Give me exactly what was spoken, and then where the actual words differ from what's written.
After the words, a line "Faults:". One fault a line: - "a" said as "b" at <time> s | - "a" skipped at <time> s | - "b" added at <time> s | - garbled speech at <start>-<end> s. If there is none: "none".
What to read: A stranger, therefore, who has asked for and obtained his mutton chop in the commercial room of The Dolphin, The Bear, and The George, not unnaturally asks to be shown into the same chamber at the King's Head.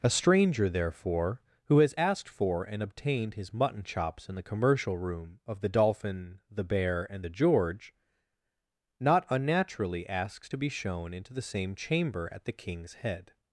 A stranger, therefore, who has asked for and obtained his mutton chops in the commercial room of The Dolphin, The Bear, and The George, not unnaturally asks to be shown into the same chamber at the King's Head.
Faults:
- "chop" said as "chops" at 3.8 s